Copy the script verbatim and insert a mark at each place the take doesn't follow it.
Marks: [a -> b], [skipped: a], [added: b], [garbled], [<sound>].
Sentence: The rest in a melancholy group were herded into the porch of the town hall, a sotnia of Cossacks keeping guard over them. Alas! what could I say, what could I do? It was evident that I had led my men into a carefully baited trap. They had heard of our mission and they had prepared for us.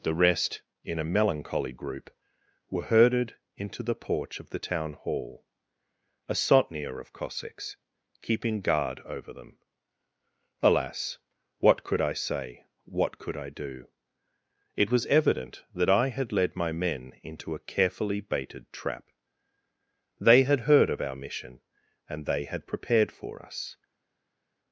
The rest in a melancholy group were herded into the porch of the town hall, a sotnia of Cossacks keeping guard over them. Alas! what could I say, what could I do? It was evident that I had led my men into a carefully baited trap. They had heard of our mission and they had prepared for us.